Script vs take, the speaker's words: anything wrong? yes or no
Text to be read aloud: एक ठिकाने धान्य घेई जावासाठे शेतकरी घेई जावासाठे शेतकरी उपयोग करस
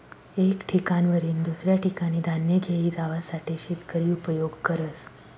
yes